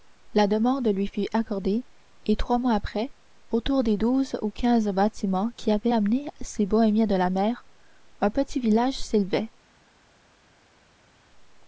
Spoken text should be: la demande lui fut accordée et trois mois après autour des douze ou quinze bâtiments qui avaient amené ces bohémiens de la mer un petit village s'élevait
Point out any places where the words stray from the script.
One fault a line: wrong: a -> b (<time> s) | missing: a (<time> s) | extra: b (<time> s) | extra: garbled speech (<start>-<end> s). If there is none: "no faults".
no faults